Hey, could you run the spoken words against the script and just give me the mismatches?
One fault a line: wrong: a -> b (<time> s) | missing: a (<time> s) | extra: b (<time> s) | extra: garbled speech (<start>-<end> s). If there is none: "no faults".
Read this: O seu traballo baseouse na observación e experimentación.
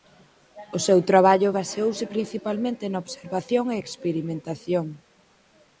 extra: principalmente (2.1 s)